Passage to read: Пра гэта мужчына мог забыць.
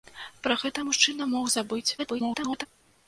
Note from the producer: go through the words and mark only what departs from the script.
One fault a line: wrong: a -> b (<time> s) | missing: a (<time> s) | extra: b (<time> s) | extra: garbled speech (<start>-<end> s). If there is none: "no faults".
extra: garbled speech (2.0-2.7 s)